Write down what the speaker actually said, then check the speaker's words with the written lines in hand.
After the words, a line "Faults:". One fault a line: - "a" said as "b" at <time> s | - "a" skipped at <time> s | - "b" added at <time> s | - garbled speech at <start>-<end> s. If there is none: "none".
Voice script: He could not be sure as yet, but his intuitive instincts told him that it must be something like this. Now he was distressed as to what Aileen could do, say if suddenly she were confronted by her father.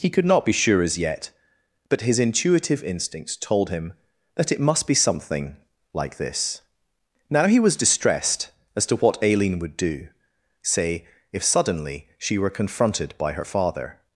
He could not be sure as yet, but his intuitive instincts told him that it must be something like this. Now he was distressed as to what Aileen would do, say if suddenly she were confronted by her father.
Faults:
- "could" said as "would" at 9.6 s